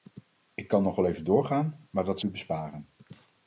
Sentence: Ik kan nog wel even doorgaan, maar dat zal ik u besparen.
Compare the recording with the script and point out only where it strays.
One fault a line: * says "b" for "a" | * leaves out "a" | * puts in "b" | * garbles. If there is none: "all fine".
* leaves out "zal ik"